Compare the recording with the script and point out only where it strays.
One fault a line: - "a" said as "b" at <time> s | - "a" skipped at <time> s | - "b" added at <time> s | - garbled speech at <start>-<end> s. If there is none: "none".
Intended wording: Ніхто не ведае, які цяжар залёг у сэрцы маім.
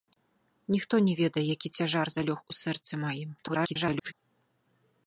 - garbled speech at 3.4-4.1 s